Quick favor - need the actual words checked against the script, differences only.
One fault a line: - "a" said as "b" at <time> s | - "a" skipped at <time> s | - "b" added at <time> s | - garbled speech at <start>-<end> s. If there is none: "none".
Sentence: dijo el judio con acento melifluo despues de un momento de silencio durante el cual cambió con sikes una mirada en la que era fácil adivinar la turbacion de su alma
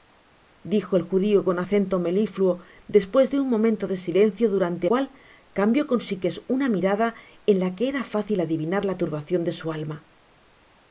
- "el" skipped at 4.9 s